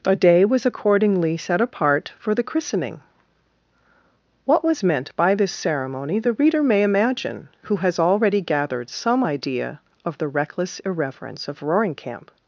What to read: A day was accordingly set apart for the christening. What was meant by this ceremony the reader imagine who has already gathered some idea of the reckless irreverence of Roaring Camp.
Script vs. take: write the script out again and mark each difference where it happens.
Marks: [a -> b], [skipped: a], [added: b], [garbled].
A day was accordingly set apart for the christening. What was meant by this ceremony the reader [added: may] imagine who has already gathered some idea of the reckless irreverence of Roaring Camp.